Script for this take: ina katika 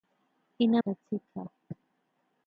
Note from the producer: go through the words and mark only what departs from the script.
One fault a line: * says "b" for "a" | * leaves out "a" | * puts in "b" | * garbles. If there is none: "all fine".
all fine